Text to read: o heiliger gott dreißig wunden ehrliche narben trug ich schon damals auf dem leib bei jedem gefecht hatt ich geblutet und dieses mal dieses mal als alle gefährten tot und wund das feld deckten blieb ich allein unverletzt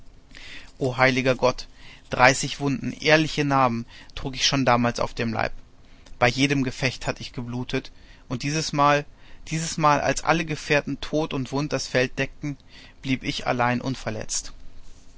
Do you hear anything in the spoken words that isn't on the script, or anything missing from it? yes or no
no